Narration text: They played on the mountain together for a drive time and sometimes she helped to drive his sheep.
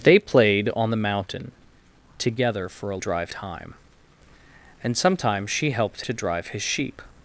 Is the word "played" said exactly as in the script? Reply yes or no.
yes